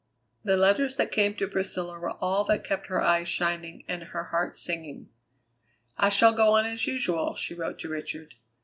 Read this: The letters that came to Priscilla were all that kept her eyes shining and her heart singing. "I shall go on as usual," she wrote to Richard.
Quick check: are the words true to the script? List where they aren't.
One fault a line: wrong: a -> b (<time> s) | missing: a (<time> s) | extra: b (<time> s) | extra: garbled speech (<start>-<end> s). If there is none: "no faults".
no faults